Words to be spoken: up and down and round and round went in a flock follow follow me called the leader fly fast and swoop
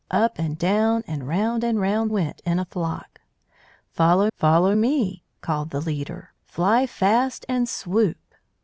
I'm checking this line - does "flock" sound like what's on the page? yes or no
yes